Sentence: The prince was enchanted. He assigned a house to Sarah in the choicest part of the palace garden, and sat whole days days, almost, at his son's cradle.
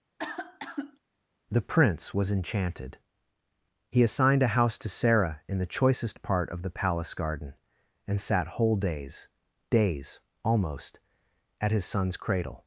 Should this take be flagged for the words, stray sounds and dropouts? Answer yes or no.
yes